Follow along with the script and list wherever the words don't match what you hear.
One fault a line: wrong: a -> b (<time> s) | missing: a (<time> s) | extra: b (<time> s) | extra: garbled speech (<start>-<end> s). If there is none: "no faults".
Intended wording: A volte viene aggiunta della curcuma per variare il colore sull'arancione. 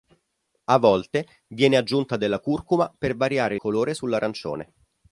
missing: il (3.5 s)